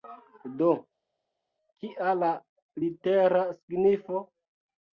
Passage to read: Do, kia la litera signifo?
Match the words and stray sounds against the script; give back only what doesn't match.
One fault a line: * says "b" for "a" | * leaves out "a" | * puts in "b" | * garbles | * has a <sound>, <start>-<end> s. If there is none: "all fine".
all fine